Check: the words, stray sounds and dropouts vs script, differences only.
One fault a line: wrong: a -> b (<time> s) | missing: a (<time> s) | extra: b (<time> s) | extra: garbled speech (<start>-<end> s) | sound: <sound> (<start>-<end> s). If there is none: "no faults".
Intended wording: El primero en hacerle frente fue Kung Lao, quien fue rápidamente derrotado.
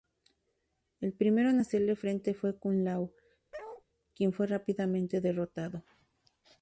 sound: bark (3.5-3.8 s)